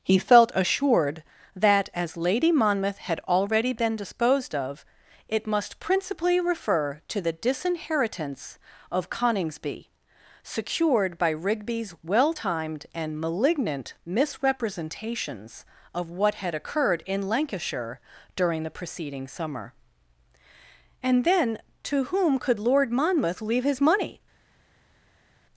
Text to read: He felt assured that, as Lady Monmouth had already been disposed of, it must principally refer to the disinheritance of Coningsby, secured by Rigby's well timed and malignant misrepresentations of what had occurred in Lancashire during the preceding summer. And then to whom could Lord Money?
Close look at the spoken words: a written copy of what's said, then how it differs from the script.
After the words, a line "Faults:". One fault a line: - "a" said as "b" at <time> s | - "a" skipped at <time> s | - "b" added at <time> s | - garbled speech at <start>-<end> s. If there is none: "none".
He felt assured that, as Lady Monmouth had already been disposed of, it must principally refer to the disinheritance of Coningsby, secured by Rigby's well timed and malignant misrepresentations of what had occurred in Lancashire during the preceding summer. And then to whom could Lord Monmouth leave his money?
Faults:
- "Monmouth leave his" added at 22.9 s